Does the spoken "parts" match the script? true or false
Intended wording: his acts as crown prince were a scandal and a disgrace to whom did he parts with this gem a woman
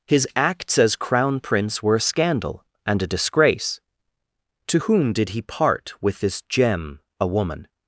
false